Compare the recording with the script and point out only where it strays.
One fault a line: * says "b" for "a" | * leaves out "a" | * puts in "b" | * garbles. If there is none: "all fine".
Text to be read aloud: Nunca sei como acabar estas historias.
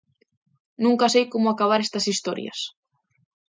all fine